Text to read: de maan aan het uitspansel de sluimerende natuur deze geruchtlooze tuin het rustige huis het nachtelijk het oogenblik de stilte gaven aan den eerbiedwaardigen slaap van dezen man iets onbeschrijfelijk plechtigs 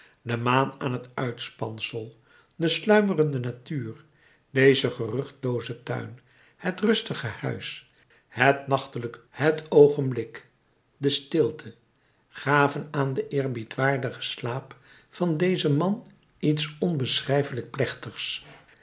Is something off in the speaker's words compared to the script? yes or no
no